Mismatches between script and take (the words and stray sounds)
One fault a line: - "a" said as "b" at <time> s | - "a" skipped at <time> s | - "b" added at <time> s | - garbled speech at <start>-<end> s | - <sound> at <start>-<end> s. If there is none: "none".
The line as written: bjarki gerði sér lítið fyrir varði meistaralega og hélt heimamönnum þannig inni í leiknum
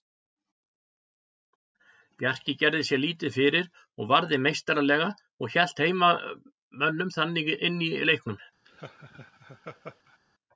- "og" added at 4.0 s
- laugh at 8.7-10.2 s